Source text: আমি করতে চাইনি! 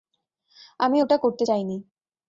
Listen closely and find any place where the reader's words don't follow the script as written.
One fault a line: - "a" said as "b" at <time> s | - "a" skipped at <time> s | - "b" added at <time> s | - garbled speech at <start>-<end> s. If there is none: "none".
- "ওটা" added at 1.0 s